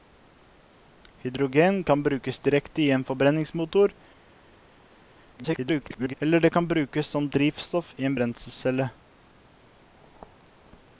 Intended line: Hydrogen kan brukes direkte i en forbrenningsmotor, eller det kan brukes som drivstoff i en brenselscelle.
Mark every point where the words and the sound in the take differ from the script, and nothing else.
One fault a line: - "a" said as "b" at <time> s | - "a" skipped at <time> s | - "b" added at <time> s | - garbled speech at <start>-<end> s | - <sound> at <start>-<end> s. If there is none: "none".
- garbled speech at 5.4-6.1 s